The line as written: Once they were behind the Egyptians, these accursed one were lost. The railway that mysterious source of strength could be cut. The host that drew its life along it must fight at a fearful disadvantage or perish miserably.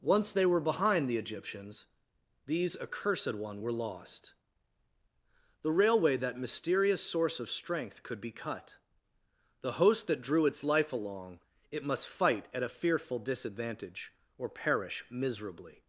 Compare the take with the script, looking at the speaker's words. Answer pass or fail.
pass